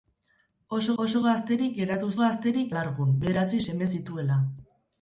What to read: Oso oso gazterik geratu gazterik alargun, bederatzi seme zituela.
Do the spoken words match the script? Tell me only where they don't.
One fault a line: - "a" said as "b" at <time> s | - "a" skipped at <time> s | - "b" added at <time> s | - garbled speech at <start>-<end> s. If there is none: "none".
none